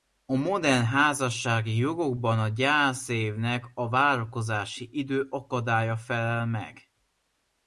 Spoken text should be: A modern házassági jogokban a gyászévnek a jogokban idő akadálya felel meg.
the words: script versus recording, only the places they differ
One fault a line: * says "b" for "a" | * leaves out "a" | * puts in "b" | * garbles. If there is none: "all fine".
* says "várakozási" for "jogokban"